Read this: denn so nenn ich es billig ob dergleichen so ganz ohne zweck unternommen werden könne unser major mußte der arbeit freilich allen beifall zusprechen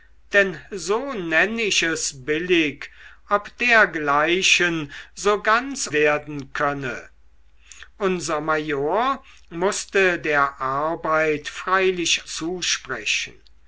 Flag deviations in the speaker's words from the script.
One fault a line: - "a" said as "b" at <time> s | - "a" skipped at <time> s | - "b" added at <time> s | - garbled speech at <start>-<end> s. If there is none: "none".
- "ohne zweck unternommen" skipped at 5.9 s
- "allen beifall" skipped at 12.2 s